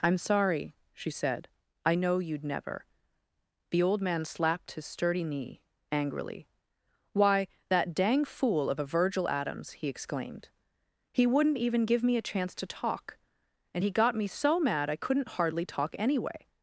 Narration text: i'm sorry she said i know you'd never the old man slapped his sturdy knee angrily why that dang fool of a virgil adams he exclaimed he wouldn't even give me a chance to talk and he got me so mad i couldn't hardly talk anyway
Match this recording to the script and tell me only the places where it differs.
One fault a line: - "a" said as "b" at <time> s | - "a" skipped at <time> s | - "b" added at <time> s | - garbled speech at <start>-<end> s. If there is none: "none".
none